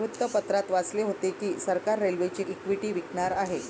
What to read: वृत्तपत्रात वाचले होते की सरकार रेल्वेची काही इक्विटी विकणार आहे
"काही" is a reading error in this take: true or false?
true